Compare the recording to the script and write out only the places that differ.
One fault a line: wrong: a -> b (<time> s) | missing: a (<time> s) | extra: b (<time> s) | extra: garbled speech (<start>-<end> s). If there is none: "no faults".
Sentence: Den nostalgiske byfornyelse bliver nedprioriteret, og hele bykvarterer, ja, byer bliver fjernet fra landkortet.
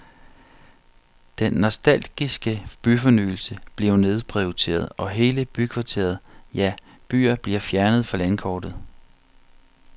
no faults